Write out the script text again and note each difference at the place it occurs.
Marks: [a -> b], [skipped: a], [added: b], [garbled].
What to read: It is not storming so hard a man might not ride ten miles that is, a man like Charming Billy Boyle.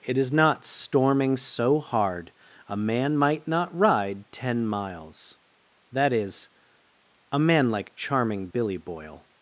It is not storming so hard a man might not ride ten miles that is, a man like Charming Billy Boyle.